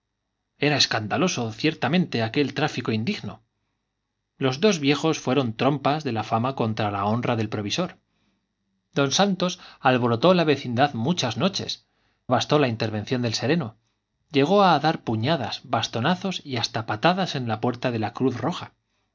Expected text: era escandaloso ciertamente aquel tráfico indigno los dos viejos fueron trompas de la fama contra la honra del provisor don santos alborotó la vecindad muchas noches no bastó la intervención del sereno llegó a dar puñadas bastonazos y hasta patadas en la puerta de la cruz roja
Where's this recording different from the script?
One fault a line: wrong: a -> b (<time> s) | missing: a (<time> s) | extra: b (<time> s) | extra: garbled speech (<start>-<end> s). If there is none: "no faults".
missing: no (11.8 s)